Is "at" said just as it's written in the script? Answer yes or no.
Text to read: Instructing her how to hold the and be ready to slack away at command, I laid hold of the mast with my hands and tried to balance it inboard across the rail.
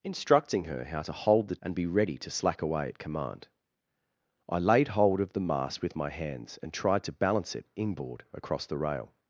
yes